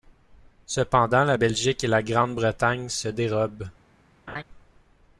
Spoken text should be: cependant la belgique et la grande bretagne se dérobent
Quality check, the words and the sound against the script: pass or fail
fail